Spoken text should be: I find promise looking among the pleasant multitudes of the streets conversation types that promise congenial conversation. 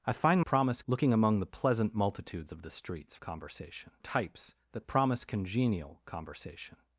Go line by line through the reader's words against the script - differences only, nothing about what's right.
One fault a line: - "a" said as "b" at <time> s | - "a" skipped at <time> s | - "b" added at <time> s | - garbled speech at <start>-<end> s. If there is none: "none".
none